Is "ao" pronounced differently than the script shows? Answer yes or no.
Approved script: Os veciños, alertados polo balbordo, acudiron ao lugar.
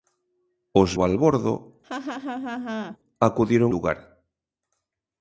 yes